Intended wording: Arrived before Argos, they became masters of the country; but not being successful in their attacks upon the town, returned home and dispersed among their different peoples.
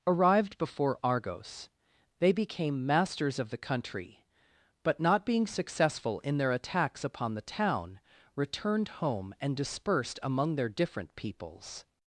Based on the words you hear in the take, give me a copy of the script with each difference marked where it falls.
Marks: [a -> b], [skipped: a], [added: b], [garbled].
Arrived before Argos, they became masters of the country; but not being successful in their attacks upon the town, returned home and dispersed among their different peoples.